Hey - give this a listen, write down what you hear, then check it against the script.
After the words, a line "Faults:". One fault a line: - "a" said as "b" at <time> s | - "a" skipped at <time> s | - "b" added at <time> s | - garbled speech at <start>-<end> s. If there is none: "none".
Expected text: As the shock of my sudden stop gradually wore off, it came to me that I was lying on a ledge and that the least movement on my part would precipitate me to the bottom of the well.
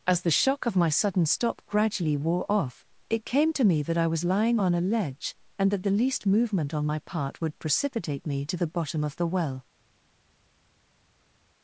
As the shock of my sudden stop gradually wore off, it came to me that I was lying on a ledge and that the least movement on my part would precipitate me to the bottom of the well.
Faults:
none